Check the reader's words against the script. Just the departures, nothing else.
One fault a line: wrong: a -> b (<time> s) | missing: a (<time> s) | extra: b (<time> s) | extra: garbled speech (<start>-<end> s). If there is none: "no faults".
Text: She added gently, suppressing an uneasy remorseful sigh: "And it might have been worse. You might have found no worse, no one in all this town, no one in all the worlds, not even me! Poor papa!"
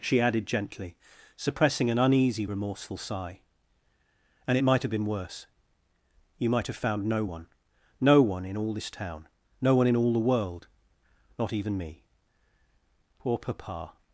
wrong: worse -> one (7.2 s)
wrong: worlds -> world (10.2 s)